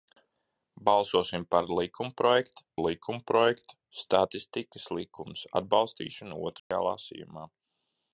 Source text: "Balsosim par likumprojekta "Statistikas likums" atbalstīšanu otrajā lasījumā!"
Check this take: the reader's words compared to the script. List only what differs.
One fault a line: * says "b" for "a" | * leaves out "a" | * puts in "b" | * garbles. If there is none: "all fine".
* puts in "likumprojekta"